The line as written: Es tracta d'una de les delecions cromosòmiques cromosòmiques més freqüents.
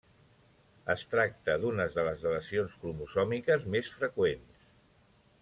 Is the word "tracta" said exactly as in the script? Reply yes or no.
yes